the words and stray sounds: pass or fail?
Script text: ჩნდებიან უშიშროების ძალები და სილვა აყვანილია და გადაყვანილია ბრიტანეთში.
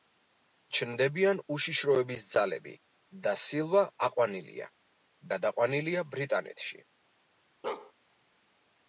fail